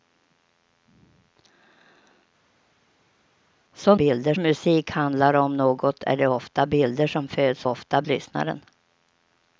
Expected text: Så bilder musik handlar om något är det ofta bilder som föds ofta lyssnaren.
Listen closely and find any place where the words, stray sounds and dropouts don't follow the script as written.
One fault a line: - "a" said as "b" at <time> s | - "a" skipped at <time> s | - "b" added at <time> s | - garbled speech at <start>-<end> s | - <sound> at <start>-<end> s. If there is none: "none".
none